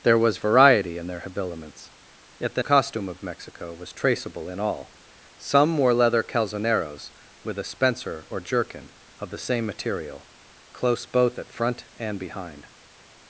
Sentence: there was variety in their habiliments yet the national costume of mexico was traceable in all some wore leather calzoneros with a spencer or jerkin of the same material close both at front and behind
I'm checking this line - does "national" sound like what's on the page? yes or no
no